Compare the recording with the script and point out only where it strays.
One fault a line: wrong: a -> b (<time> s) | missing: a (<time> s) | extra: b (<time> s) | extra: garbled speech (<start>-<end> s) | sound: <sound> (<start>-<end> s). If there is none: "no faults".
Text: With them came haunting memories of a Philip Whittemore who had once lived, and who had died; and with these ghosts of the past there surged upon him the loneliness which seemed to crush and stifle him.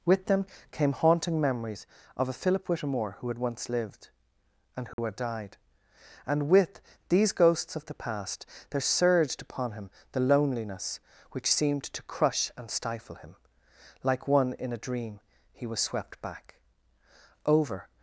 sound: dropout (4.9-5.0 s)
extra: Like one in a dream he was swept back Over (14.0 s)